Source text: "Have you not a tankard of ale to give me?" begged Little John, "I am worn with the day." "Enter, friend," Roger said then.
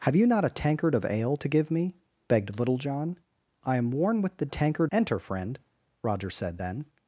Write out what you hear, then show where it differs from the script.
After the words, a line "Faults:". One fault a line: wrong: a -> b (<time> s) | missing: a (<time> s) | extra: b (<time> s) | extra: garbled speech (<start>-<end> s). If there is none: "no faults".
"Have you not a tankard of ale to give me?" begged Little John, "I am worn with the tankard." "Enter, friend," Roger said then.
Faults:
wrong: day -> tankard (4.5 s)